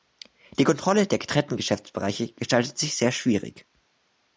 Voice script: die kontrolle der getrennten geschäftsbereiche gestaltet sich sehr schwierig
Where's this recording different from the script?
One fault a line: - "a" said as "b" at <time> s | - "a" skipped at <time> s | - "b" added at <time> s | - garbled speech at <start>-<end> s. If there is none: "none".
none